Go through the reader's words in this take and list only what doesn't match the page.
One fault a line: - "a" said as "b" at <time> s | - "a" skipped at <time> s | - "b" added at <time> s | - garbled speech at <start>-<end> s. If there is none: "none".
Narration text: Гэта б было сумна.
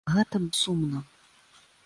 - "было" skipped at 0.5 s